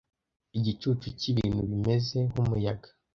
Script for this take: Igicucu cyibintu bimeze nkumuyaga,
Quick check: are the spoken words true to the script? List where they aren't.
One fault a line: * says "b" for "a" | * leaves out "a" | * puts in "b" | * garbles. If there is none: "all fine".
all fine